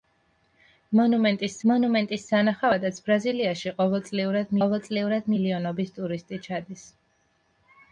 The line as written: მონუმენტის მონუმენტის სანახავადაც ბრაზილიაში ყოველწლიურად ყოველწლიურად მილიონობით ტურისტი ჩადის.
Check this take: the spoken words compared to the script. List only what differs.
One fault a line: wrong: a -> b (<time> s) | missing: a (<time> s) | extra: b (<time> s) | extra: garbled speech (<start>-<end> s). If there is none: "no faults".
no faults